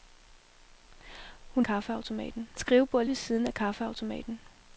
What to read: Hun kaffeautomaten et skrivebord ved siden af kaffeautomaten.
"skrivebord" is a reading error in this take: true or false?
false